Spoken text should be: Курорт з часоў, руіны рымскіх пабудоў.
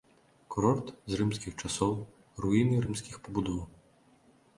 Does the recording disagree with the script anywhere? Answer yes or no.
yes